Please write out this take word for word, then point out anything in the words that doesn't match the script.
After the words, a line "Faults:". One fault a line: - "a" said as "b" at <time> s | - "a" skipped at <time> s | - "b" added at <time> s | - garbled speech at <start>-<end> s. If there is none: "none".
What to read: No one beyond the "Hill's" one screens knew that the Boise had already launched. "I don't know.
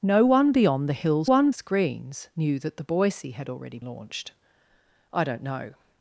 No one beyond the "Hill's" one screens knew that the Boise had already launched. "I don't know.
Faults:
none